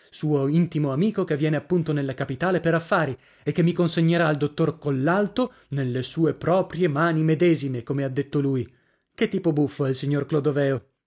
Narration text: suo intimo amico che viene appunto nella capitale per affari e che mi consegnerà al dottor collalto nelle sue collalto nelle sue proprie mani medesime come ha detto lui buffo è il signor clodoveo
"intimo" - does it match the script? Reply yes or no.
yes